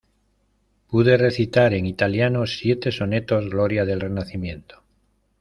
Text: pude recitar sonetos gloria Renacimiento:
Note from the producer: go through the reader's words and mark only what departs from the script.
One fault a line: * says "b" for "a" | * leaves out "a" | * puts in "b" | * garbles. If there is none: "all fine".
* puts in "en italiano siete"
* puts in "del"